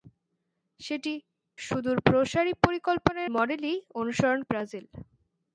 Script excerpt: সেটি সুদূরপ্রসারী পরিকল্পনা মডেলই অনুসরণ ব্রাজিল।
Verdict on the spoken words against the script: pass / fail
pass